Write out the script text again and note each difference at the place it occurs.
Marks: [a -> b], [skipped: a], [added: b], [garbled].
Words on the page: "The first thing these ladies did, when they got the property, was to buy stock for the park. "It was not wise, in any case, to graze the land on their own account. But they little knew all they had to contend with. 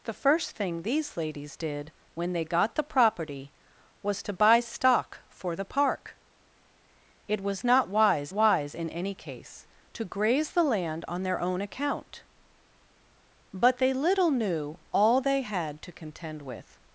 "The first thing these ladies did, when they got the property, was to buy stock for the park. "It was not wise, [added: wise] in any case, to graze the land on their own account. But they little knew all they had to contend with.